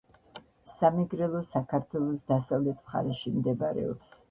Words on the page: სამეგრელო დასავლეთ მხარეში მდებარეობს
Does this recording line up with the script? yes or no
no